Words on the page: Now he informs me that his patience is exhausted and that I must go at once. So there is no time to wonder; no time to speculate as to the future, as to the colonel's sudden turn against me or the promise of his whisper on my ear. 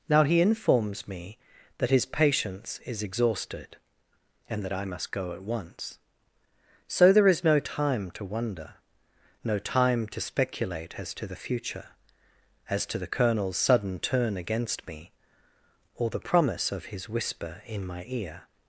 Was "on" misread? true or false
true